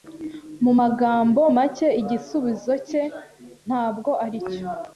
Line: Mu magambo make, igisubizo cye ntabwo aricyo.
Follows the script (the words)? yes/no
yes